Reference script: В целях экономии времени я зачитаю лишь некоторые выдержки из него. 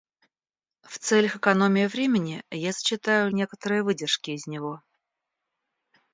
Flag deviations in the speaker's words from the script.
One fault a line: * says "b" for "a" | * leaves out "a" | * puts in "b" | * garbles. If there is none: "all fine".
* leaves out "лишь"